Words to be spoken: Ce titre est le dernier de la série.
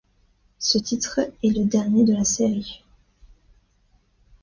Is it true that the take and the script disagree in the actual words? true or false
false